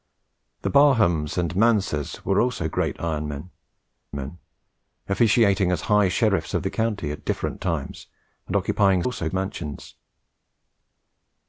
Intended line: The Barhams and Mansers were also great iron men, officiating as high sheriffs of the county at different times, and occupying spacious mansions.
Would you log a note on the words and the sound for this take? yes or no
yes